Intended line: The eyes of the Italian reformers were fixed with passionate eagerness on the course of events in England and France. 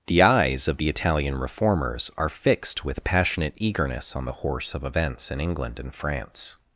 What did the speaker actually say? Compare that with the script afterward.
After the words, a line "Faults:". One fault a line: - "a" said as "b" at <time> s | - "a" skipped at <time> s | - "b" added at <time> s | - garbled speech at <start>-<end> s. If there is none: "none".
The eyes of the Italian reformers are fixed with passionate eagerness on the horse of events in England and France.
Faults:
- "were" said as "are" at 2.2 s
- "course" said as "horse" at 4.3 s